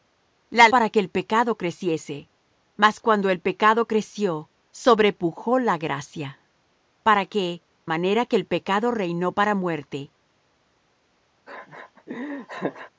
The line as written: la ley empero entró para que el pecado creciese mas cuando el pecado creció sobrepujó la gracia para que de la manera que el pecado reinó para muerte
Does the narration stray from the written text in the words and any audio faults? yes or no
yes